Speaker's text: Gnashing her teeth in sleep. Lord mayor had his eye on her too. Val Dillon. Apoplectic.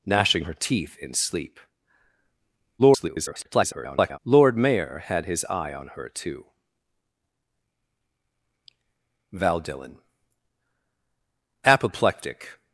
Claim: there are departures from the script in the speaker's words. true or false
true